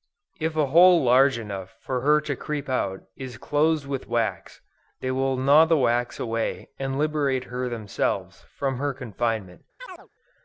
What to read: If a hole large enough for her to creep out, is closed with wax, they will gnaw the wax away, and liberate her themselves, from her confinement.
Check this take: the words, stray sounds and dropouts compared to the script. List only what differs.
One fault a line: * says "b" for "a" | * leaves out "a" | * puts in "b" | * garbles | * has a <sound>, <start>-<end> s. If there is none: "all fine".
* has a chirp, 9.8-10.1 s